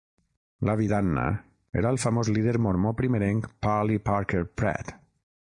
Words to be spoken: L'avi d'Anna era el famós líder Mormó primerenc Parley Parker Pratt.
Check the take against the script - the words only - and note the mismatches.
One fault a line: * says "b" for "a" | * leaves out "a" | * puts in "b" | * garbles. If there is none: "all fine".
all fine